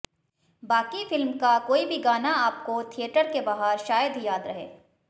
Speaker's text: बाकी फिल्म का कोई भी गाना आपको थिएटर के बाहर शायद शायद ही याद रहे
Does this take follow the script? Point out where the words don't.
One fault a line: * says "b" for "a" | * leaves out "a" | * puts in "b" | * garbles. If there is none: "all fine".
* leaves out "शायद"